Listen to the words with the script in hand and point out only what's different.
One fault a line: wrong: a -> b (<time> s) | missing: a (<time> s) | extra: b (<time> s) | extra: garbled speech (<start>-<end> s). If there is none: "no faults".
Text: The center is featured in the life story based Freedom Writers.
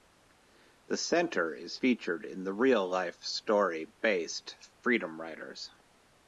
extra: real (2.5 s)